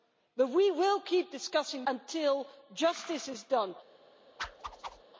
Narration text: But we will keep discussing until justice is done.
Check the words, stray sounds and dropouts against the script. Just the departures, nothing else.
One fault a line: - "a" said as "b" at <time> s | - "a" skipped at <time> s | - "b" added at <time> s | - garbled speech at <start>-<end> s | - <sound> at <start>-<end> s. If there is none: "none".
- whoosh at 4.4-5.0 s